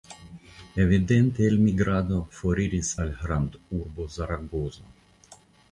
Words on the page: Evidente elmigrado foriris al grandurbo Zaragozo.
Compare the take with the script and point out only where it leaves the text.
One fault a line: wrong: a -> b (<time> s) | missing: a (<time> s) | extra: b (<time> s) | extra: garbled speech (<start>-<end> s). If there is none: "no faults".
no faults